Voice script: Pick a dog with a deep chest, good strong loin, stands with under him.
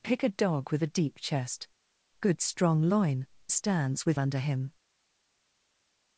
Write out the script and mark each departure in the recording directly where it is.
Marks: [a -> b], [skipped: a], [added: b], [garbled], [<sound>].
Pick a dog with a deep chest, good strong loin, stands with under him.